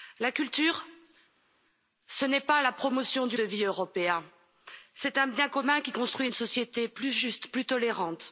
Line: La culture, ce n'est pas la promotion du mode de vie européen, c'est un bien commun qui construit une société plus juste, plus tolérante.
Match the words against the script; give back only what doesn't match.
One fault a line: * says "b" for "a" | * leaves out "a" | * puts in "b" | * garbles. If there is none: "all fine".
* leaves out "mode"